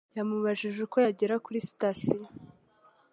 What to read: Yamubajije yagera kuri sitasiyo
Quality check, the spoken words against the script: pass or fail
fail